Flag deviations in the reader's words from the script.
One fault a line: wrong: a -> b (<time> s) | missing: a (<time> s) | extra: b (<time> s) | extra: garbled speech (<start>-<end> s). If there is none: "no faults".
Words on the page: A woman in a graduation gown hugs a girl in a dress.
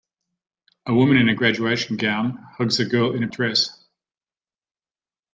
no faults